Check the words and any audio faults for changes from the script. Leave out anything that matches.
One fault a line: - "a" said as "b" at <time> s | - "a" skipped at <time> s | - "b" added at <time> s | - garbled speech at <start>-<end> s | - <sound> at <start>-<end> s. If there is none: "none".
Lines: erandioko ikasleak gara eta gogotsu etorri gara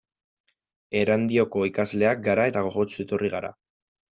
none